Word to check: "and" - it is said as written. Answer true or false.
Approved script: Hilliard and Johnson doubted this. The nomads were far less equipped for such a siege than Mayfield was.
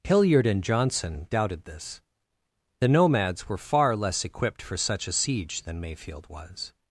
true